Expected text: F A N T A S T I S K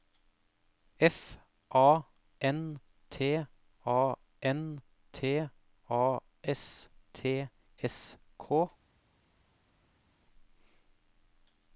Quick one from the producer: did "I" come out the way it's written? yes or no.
no